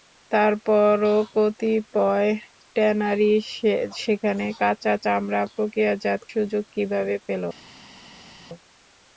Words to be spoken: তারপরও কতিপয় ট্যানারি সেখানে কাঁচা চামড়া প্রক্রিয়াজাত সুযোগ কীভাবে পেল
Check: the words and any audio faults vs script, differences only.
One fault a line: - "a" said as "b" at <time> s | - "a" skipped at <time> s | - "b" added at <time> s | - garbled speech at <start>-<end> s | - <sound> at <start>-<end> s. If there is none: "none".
none